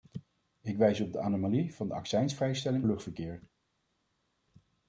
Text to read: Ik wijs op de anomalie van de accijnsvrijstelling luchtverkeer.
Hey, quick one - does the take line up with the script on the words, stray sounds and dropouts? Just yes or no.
yes